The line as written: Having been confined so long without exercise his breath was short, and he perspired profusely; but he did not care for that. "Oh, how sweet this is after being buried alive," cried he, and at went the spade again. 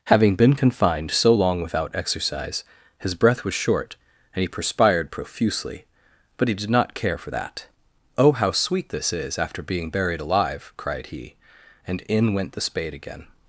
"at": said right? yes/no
no